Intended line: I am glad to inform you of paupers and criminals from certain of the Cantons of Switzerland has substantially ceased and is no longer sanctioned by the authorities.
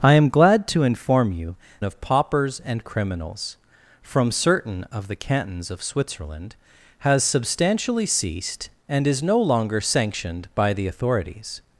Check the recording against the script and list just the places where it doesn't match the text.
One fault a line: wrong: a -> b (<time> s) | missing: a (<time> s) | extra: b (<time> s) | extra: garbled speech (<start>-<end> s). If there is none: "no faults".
no faults